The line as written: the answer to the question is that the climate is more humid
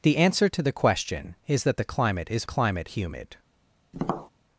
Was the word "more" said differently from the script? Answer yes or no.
yes